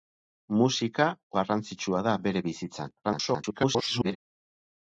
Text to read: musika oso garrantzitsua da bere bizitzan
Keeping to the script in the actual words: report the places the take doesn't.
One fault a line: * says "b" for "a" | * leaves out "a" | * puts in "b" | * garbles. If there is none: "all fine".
* leaves out "oso"
* garbles